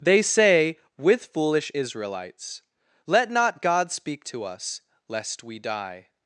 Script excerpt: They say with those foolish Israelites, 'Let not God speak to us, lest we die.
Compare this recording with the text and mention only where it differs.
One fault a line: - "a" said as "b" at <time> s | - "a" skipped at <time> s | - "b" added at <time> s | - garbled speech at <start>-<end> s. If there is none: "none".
- "those" skipped at 1.3 s